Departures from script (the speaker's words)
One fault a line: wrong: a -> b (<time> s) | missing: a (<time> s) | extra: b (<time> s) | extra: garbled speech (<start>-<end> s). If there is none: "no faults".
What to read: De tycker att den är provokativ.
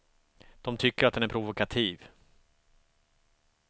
no faults